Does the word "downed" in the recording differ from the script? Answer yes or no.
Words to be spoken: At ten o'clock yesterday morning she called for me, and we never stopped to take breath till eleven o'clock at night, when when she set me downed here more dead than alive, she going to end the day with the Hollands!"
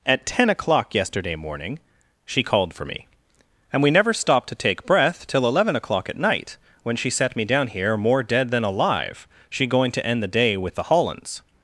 yes